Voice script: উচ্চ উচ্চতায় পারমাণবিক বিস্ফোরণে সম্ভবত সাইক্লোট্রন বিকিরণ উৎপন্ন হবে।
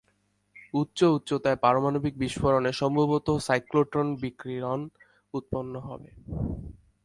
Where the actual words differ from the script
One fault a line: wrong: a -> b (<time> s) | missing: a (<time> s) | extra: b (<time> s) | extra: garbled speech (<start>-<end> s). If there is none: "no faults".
no faults